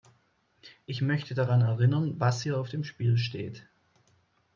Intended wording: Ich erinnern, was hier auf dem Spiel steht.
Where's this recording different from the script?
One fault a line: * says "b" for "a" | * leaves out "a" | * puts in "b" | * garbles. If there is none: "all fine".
* puts in "möchte daran"